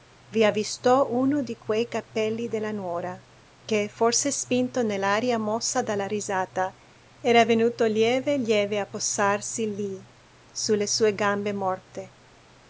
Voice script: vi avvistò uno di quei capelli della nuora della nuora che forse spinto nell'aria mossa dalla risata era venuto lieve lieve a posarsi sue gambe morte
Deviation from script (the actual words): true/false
true